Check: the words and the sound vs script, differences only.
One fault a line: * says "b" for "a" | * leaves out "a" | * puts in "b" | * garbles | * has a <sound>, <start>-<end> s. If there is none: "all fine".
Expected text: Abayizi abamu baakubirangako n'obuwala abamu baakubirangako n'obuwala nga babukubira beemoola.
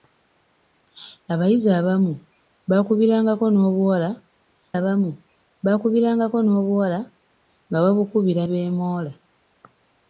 all fine